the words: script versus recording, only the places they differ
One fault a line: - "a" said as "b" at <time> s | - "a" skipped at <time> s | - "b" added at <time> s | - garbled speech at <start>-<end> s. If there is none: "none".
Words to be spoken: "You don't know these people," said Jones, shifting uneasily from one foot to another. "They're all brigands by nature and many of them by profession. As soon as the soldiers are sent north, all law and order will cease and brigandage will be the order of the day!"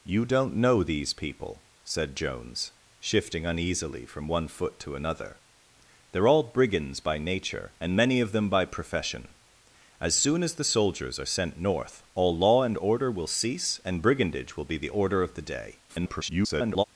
- garbled speech at 15.9-16.8 s